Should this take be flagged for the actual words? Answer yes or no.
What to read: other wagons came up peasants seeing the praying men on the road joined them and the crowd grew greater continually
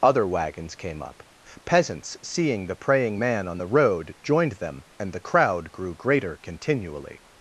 yes